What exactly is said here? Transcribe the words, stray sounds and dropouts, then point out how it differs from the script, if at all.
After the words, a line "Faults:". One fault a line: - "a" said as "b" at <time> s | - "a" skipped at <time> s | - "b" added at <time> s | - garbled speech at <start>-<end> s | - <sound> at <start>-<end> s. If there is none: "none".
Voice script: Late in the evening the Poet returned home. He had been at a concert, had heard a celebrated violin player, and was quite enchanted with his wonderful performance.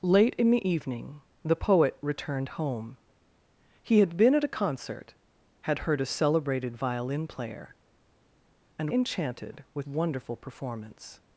Late in the evening the Poet returned home. He had been at a concert, had heard a celebrated violin player, and enchanted with wonderful performance.
Faults:
- "was quite" skipped at 8.9 s
- "his" skipped at 9.9 s